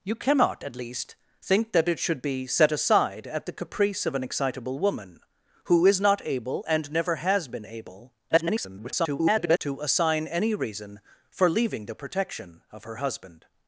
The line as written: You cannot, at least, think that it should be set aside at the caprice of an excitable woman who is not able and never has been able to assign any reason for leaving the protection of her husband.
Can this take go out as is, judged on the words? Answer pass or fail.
fail